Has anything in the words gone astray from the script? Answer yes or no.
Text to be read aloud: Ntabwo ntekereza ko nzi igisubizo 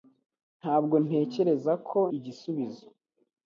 yes